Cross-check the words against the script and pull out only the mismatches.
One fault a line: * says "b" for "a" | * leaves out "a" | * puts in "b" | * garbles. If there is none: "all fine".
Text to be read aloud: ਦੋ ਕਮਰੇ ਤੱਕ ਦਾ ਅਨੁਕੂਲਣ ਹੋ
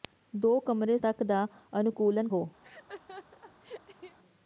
all fine